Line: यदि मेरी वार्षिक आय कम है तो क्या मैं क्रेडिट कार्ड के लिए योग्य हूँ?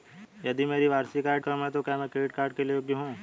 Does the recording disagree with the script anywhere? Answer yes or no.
no